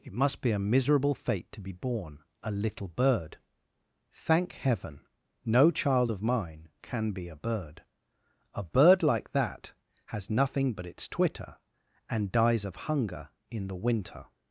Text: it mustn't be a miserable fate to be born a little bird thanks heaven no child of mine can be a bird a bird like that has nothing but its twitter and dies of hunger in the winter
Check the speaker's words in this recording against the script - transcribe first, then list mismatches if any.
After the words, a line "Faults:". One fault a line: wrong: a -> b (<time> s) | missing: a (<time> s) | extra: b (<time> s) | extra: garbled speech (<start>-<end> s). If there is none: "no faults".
it must be a miserable fate to be born a little bird thank heaven no child of mine can be a bird a bird like that has nothing but its twitter and dies of hunger in the winter
Faults:
wrong: mustn't -> must (0.1 s)
wrong: thanks -> thank (4.1 s)